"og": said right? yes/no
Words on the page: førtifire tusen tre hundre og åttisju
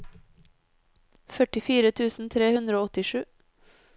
yes